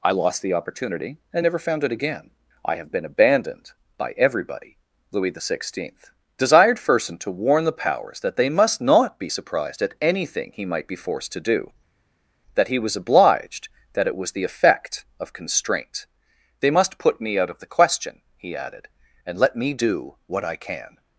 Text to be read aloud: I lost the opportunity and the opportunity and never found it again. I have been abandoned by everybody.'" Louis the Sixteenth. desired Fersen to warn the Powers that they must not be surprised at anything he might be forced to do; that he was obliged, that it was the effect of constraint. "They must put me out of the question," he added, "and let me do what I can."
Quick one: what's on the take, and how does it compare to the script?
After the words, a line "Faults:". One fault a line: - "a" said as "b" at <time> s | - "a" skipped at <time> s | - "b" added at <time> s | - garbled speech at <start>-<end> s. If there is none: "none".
I lost the opportunity and never found it again. I have been abandoned by everybody.'" Louis the Sixteenth. desired Fersen to warn the Powers that they must not be surprised at anything he might be forced to do; that he was obliged, that it was the effect of constraint. "They must put me out of the question," he added, "and let me do what I can."
Faults:
- "the opportunity and" skipped at 1.4 s